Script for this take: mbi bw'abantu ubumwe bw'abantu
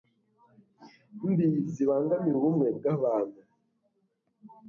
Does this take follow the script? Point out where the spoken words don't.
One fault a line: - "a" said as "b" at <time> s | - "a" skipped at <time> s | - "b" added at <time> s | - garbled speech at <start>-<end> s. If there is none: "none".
- "bw'abantu" said as "zibangamira" at 1.7 s